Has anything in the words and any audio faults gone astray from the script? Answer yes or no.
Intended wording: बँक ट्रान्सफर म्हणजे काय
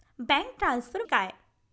yes